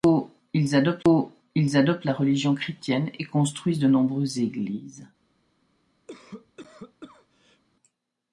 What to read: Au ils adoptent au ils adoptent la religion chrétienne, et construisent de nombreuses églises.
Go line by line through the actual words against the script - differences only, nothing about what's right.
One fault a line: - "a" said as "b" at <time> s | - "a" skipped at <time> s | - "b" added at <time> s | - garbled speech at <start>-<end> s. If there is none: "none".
none